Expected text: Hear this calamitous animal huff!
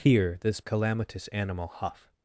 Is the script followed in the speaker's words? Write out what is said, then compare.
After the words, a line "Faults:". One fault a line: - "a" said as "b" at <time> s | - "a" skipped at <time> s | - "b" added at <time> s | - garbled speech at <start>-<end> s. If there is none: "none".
Hear this calamitous animal huff!
Faults:
none